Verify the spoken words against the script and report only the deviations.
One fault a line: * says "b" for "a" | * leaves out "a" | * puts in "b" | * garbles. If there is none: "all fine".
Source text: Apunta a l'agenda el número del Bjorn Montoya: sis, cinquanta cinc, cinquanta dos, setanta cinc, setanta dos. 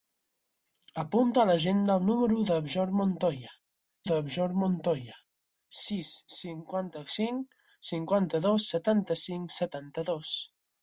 * puts in "del Bjorn Montoya"